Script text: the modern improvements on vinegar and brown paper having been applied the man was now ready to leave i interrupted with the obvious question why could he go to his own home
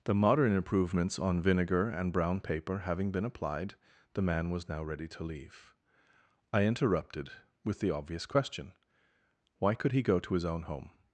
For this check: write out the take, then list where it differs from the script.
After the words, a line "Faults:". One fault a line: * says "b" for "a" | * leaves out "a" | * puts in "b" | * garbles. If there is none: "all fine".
the modern improvements on vinegar and brown paper having been applied the man was now ready to leave i interrupted with the obvious question why could he go to his own home
Faults:
all fine